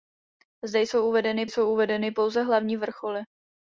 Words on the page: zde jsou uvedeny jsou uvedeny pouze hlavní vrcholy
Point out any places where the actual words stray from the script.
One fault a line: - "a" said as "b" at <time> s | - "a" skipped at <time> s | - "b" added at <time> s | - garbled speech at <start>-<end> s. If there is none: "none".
none